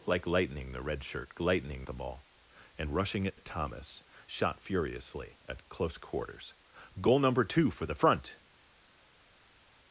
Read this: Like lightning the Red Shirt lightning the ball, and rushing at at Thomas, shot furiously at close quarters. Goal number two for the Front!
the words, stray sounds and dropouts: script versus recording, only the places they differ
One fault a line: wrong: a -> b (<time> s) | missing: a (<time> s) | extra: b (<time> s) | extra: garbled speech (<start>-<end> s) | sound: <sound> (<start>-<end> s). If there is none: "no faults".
no faults